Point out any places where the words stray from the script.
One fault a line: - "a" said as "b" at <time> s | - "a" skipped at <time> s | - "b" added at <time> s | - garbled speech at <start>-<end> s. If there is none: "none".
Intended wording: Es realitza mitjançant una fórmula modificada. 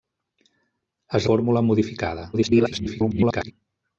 - "realitza mitjançant una" skipped at 1.3 s
- garbled speech at 2.3-3.5 s